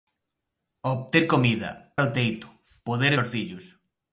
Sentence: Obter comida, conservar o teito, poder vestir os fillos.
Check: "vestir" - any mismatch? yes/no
yes